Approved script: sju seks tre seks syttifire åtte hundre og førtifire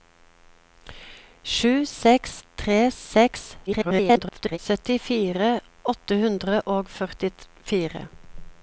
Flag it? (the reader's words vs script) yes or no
yes